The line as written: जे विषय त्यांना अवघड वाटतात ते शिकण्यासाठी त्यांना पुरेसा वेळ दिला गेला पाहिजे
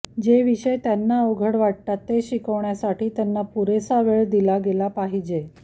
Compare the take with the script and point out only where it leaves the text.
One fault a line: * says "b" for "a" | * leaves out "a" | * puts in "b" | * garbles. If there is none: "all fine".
all fine